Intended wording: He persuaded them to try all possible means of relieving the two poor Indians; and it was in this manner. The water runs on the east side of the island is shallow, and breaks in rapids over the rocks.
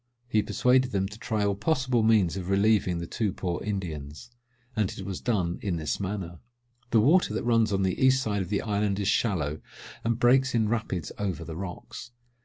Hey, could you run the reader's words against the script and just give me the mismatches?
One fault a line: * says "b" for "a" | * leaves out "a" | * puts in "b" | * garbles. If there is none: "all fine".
* puts in "done"
* puts in "that"